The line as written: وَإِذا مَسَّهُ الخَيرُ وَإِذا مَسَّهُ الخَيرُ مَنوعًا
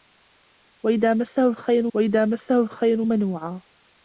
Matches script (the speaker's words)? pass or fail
pass